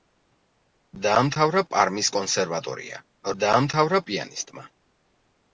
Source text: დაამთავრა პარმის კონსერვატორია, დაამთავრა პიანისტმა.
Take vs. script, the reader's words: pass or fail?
pass